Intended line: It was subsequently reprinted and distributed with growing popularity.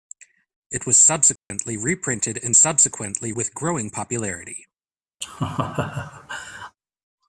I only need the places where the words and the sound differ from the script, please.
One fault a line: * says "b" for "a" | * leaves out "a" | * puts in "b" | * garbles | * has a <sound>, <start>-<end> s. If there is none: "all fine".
* has a dropout, 1.4-1.5 s
* says "subsequently" for "distributed"
* has a laugh, 5.2-6.8 s